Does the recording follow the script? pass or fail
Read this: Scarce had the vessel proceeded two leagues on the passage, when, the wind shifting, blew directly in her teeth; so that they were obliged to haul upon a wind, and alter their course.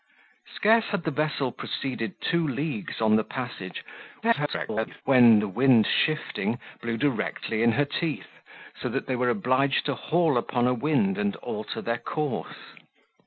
fail